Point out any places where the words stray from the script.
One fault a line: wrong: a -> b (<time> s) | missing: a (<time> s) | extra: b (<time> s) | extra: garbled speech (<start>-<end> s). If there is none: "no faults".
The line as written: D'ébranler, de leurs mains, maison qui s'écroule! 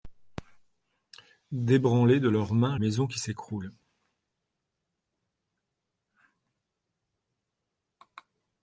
no faults